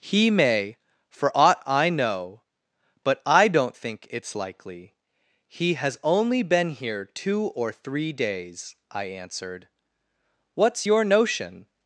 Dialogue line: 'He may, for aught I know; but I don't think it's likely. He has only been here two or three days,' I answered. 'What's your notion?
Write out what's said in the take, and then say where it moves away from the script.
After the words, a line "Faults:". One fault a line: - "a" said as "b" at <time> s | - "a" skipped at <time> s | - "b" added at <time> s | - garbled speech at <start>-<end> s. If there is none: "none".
'He may, for aught I know; but I don't think it's likely. He has only been here two or three days,' I answered. 'What's your notion?
Faults:
none